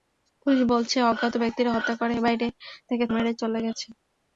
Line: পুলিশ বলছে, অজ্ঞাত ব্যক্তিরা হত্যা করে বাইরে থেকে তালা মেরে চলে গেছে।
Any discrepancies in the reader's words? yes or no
yes